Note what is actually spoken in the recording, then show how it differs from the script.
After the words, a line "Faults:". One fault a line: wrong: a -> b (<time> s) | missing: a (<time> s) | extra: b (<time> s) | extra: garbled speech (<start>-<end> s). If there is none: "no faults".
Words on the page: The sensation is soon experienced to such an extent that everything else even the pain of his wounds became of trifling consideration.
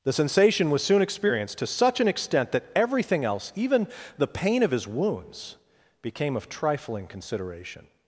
The sensation was soon experienced to such an extent that everything else even the pain of his wounds became of trifling consideration.
Faults:
wrong: is -> was (0.7 s)